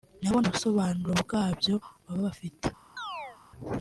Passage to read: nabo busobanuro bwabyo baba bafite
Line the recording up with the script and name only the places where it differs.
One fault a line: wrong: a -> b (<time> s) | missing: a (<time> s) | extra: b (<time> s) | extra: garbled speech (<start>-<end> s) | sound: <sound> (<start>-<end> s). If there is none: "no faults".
sound: chirp (3.0-3.4 s)